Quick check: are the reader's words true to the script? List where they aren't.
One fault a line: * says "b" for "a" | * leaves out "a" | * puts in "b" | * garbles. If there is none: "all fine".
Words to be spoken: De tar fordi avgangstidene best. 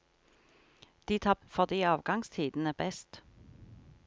all fine